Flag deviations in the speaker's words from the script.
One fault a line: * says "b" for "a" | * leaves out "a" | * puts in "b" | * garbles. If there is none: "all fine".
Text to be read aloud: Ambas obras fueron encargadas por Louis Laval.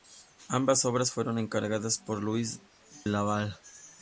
all fine